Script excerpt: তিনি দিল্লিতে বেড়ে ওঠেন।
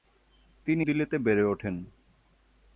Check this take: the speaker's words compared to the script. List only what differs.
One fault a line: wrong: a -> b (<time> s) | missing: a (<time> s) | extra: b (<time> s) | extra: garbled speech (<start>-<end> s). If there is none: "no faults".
no faults